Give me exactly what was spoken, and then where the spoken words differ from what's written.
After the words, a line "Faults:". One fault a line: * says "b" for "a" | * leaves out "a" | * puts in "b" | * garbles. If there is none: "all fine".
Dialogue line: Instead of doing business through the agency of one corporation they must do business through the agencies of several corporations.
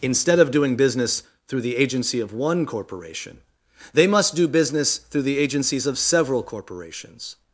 Instead of doing business through the agency of one corporation they must do business through the agencies of several corporations.
Faults:
all fine